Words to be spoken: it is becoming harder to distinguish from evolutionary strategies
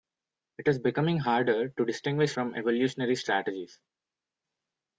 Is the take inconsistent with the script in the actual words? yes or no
no